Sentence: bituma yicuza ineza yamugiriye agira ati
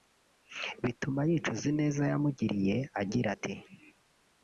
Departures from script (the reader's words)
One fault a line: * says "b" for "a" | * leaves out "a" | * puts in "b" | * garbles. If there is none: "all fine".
all fine